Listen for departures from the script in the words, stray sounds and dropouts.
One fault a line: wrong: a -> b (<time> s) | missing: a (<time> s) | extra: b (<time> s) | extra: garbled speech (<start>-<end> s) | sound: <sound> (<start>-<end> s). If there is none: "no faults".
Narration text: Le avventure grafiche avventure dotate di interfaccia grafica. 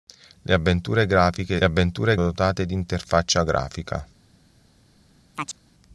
sound: chirp (5.3-5.6 s)